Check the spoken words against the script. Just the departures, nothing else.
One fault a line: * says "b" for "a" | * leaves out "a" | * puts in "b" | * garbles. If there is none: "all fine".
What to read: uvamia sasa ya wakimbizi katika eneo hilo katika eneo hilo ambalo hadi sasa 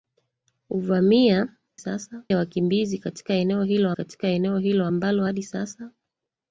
all fine